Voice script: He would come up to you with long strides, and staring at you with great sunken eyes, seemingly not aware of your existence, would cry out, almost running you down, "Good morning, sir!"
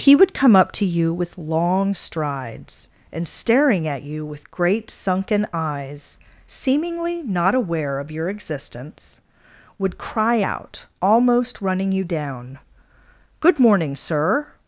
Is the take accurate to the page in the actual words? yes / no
yes